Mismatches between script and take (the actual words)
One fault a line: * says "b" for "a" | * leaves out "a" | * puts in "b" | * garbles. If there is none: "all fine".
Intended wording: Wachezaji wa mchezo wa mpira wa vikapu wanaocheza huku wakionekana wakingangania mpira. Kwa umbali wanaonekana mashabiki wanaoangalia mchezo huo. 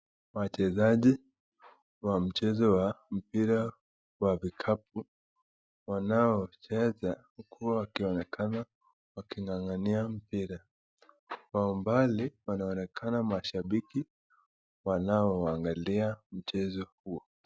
all fine